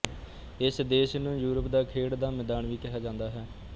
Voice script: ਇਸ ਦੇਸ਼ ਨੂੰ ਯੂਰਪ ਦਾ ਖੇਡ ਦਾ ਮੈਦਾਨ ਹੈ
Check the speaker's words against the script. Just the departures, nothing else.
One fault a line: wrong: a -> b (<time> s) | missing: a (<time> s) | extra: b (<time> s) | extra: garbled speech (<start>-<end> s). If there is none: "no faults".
extra: ਵੀ ਕਿਹਾ ਜਾਂਦਾ (2.7 s)